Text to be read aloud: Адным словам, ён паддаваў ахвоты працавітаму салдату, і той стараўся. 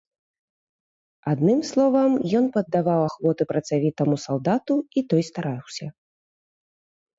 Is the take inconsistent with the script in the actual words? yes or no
no